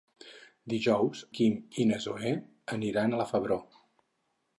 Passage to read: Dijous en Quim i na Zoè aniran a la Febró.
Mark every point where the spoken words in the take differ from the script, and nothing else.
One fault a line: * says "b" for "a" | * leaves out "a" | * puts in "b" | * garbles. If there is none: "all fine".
* leaves out "en"